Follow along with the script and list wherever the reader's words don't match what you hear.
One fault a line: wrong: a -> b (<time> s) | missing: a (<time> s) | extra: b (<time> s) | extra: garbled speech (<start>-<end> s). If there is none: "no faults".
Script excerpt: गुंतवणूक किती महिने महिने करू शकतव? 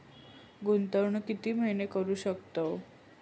missing: महिने (1.9 s)